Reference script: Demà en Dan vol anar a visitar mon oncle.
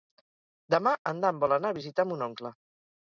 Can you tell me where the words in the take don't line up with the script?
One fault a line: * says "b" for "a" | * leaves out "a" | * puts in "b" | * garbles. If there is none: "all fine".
all fine